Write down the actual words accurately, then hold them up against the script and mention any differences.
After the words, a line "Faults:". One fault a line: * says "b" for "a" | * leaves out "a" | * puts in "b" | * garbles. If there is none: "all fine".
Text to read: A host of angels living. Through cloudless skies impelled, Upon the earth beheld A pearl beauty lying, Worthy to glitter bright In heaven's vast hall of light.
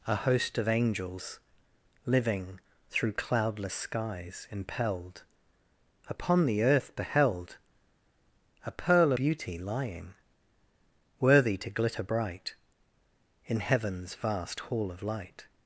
A host of angels living. Through cloudless skies impelled, Upon the earth beheld A pearl beauty lying, Worthy to glitter bright In heaven's vast hall of light.
Faults:
all fine